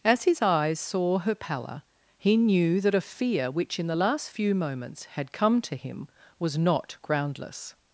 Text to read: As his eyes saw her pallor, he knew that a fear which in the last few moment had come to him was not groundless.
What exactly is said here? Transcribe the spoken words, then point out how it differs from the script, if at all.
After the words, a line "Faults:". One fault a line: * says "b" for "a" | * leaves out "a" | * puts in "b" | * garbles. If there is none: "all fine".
As his eyes saw her pallor, he knew that a fear which in the last few moments had come to him was not groundless.
Faults:
* says "moments" for "moment"